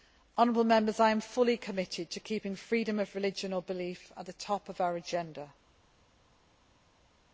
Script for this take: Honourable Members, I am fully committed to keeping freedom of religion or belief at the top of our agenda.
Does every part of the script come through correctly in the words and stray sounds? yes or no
yes